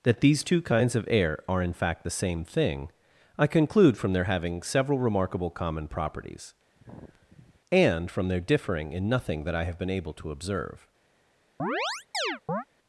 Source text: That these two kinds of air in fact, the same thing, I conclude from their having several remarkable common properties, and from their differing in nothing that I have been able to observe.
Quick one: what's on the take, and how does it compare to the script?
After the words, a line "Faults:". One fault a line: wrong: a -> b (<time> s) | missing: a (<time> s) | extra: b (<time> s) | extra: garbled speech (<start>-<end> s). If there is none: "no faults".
That these two kinds of air are, in fact, the same thing, I conclude from their having several remarkable common properties, and from their differing in nothing that I have been able to observe.
Faults:
extra: are (1.5 s)